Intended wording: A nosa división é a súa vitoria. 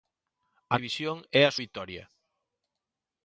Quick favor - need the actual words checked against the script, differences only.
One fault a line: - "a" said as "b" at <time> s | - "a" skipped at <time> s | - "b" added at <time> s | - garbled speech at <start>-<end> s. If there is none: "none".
- "nosa" skipped at 0.8 s
- "súa" skipped at 1.5 s